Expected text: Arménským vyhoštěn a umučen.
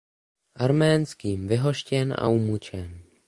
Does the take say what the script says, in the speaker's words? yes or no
yes